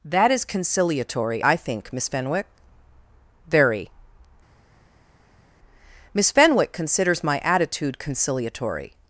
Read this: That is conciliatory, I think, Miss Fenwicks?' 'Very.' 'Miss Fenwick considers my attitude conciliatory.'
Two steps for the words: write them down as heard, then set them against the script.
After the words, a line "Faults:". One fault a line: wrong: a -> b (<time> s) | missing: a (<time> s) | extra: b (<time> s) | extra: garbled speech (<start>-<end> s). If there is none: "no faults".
That is conciliatory, I think, Miss Fenwick?' 'Very.' 'Miss Fenwick considers my attitude conciliatory.'
Faults:
wrong: Fenwicks -> Fenwick (2.1 s)